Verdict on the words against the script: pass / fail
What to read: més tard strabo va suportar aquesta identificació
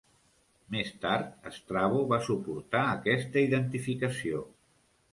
pass